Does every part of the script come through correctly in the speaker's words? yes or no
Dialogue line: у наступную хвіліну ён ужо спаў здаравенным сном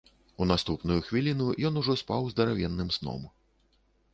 yes